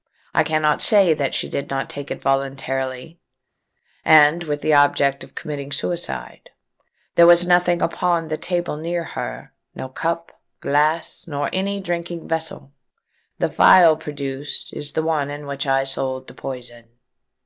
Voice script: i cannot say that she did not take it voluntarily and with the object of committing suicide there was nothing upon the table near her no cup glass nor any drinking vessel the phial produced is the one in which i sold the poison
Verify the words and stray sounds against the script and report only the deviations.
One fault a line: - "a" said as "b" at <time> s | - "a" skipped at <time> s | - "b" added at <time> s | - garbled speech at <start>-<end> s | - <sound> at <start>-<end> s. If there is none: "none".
none